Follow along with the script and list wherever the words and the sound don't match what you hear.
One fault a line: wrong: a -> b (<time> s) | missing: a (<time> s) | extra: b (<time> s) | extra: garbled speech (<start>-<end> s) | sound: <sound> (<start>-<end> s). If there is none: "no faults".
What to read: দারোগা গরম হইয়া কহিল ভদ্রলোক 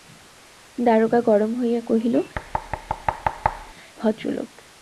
sound: thud (2.3-3.7 s)